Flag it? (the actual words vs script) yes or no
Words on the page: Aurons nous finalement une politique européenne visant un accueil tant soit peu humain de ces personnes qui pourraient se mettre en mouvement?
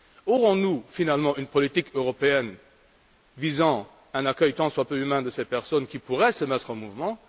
no